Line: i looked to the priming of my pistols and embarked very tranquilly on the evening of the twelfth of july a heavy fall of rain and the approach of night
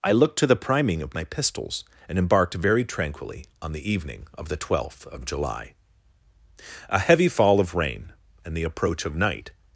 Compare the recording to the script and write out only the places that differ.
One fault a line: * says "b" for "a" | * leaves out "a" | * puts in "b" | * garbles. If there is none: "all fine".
all fine